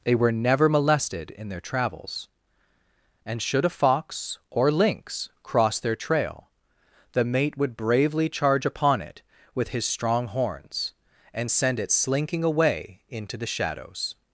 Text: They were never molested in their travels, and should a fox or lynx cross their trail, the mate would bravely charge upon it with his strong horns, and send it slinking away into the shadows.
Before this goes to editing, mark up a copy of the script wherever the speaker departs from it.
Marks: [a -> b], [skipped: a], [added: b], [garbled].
They were never molested in their travels, and should a fox or lynx cross their trail, the mate would bravely charge upon it with his strong horns, and send it slinking away into the shadows.